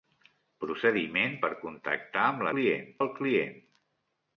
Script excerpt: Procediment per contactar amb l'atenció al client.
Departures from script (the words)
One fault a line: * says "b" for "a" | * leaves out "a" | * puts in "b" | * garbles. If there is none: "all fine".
* says "client" for "l'atenció"